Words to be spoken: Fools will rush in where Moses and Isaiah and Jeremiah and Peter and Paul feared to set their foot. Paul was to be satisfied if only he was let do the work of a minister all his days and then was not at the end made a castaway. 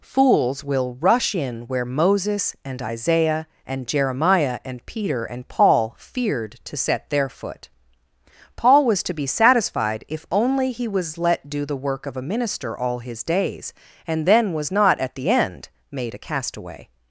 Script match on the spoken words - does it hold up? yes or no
yes